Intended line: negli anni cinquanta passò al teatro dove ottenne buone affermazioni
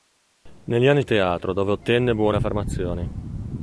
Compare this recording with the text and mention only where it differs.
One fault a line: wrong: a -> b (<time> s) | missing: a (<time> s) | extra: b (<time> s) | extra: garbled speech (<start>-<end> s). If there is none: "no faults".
missing: cinquanta passò (1.0 s)